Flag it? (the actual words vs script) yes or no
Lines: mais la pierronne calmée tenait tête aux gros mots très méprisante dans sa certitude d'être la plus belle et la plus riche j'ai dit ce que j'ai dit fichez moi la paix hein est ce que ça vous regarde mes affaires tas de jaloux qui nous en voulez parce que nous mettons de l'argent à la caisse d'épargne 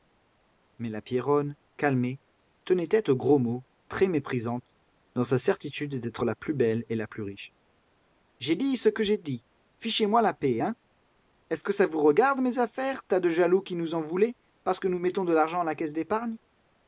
no